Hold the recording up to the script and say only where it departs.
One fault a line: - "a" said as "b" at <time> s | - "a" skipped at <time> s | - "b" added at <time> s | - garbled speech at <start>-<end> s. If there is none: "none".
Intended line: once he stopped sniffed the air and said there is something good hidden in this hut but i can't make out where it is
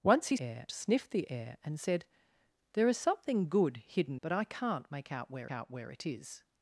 - "stopped" said as "air" at 0.4 s
- "in this hut" skipped at 4.2 s
- "out where" added at 5.5 s